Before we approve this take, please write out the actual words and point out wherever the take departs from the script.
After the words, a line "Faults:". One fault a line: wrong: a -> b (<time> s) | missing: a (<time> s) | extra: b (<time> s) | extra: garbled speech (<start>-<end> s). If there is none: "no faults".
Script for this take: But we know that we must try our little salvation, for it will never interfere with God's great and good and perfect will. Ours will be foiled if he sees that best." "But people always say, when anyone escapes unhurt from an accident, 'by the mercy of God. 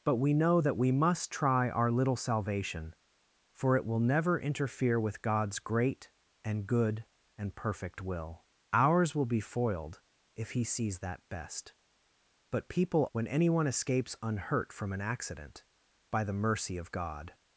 But we know that we must try our little salvation, for it will never interfere with God's great and good and perfect will. Ours will be foiled if he sees that best." "But people when anyone escapes unhurt from an accident, 'by the mercy of God.
Faults:
missing: always say (13.0 s)